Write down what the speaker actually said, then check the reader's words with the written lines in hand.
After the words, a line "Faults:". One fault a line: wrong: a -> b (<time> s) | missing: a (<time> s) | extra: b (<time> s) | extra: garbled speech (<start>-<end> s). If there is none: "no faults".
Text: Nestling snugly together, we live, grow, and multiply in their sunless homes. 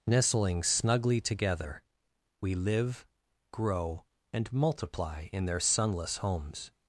Nestling snugly together, we live, grow, and multiply in their sunless homes.
Faults:
no faults